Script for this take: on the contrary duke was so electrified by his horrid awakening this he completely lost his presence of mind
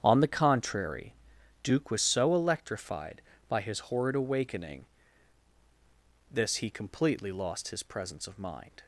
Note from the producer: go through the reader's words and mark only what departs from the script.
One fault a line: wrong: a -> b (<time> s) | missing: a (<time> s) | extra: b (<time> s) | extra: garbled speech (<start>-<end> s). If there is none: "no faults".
no faults